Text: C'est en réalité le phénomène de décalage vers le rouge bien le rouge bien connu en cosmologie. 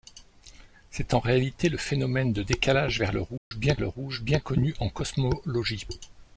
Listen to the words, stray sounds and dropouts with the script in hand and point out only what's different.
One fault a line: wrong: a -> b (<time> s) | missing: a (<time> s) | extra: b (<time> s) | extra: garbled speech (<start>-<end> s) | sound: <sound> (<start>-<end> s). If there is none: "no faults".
sound: dropout (3.4-3.5 s)